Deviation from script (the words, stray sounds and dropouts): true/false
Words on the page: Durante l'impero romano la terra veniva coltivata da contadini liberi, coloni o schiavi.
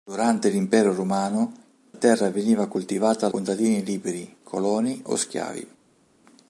true